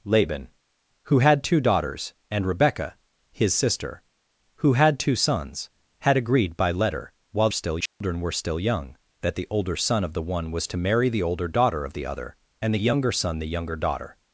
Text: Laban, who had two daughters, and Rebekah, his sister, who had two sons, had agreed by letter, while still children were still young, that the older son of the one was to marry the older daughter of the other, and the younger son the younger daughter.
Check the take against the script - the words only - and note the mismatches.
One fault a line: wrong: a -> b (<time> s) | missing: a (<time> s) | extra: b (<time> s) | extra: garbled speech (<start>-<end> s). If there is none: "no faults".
no faults